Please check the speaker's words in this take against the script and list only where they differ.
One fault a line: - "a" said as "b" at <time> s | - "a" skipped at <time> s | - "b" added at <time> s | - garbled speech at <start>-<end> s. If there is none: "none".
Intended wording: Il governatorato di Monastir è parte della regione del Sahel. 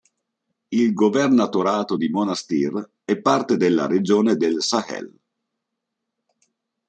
none